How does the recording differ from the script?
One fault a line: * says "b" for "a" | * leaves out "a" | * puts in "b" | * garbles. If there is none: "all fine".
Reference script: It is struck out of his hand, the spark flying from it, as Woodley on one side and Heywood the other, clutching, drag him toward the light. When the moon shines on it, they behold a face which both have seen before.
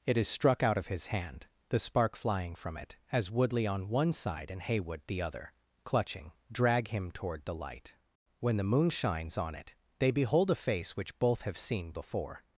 all fine